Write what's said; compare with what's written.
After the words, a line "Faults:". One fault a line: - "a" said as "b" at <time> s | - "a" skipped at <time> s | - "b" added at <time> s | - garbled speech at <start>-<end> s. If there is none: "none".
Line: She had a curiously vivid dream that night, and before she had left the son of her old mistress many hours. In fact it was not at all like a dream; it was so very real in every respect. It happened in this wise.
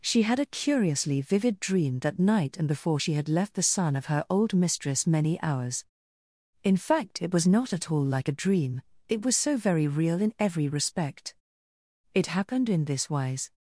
She had a curiously vivid dream that night, and before she had left the son of her old mistress many hours. In fact it was not at all like a dream; it was so very real in every respect. It happened in this wise.
Faults:
none